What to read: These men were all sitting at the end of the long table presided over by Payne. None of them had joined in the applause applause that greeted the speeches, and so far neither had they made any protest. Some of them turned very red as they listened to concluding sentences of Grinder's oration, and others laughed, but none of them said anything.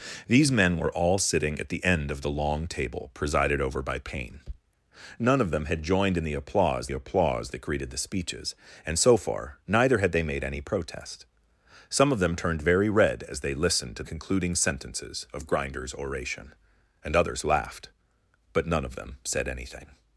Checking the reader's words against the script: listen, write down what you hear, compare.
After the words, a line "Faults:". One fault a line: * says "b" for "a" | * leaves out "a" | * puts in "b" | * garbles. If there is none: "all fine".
These men were all sitting at the end of the long table presided over by Payne. None of them had joined in the applause applause that greeted the speeches, and so far neither had they made any protest. Some of them turned very red as they listened to concluding sentences of Grinder's oration, and others laughed, but none of them said anything.
Faults:
all fine